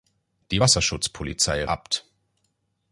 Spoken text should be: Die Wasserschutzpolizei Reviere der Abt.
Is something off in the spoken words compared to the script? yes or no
yes